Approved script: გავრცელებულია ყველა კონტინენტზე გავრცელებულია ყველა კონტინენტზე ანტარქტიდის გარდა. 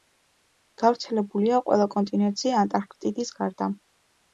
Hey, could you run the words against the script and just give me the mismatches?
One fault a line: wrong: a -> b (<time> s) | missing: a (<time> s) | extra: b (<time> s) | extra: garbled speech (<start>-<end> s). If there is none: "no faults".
missing: გავრცელებულია ყველა კონტინენტზე (2.6 s)